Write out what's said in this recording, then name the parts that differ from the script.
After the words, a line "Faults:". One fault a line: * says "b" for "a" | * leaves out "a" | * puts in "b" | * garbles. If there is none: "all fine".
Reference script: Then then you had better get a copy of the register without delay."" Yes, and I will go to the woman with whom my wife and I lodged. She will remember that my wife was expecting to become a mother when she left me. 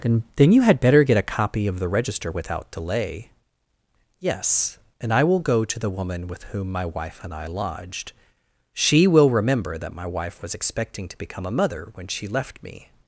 Then then you had better get a copy of the register without delay."" Yes, and I will go to the woman with whom my wife and I lodged. She will remember that my wife was expecting to become a mother when she left me.
Faults:
all fine